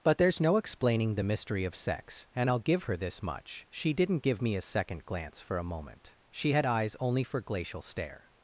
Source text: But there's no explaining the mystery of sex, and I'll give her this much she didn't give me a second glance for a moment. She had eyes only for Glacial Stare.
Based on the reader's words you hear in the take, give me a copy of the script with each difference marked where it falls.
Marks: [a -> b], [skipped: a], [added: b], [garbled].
But there's no explaining the mystery of sex, and I'll give her this much she didn't give me a second glance for a moment. She had eyes only for Glacial Stare.